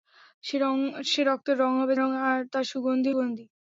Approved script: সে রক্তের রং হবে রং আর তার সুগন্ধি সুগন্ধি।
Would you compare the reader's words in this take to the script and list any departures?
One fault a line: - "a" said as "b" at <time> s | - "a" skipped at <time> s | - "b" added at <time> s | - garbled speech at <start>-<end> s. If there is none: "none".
none